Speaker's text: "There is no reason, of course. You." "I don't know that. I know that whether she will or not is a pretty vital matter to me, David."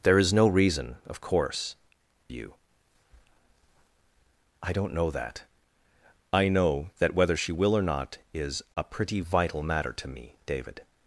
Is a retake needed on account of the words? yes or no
no